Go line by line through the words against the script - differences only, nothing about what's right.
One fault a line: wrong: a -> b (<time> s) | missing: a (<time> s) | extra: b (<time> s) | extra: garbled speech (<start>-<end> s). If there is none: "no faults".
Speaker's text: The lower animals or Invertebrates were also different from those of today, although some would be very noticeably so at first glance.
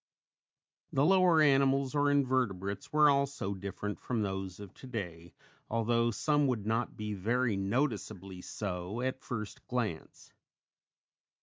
extra: not (6.7 s)